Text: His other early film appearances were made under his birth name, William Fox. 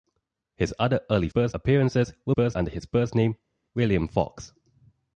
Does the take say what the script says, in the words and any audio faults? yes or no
no